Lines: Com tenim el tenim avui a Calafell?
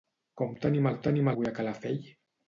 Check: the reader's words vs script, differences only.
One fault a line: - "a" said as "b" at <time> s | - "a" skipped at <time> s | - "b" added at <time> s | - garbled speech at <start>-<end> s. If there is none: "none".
none